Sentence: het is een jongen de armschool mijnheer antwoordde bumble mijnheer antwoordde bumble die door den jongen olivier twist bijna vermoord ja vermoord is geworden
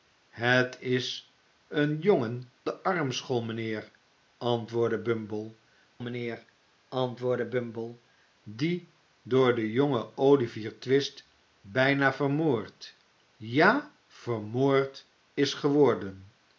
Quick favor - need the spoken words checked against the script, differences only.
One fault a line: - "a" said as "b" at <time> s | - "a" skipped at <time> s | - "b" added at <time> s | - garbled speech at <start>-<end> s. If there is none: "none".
none